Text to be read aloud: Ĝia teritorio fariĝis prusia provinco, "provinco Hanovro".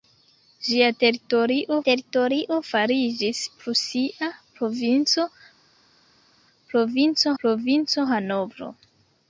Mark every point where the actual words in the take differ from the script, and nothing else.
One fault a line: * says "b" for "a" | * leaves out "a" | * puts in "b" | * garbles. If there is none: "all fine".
* puts in "teritorio"
* puts in "provinco"